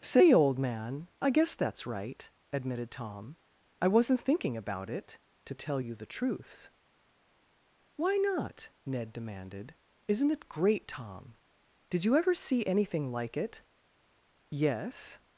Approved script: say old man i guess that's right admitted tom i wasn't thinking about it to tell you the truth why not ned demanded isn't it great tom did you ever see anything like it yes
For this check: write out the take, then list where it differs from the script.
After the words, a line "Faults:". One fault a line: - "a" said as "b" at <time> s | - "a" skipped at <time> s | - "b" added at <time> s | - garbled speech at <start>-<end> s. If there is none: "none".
say old man i guess that's right admitted tom i wasn't thinking about it to tell you the truths why not ned demanded isn't it great tom did you ever see anything like it yes
Faults:
- "truth" said as "truths" at 6.1 s